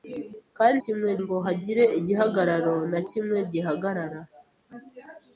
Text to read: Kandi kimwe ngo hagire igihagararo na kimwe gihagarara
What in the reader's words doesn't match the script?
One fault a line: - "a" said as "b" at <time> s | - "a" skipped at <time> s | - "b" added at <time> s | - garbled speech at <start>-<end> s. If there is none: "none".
none